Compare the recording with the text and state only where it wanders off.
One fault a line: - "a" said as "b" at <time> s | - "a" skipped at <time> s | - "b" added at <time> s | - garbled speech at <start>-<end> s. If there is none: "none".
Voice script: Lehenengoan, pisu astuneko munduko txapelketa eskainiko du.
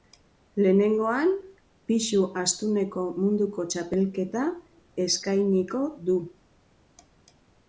none